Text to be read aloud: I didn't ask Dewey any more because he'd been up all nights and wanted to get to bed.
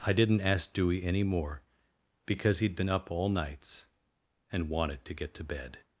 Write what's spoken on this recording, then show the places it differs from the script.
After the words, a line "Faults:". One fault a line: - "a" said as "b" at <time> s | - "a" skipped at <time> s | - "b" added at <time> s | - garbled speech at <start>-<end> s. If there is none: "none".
I didn't ask Dewey any more because he'd been up all nights and wanted to get to bed.
Faults:
none